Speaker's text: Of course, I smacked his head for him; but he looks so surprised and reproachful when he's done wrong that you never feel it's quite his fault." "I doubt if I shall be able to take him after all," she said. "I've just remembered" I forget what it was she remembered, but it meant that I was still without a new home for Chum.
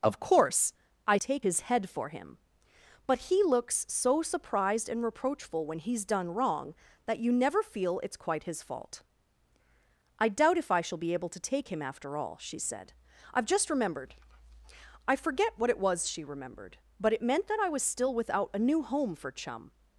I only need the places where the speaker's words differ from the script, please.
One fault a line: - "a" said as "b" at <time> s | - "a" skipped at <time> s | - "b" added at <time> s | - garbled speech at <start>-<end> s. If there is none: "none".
- "smacked" said as "take" at 1.2 s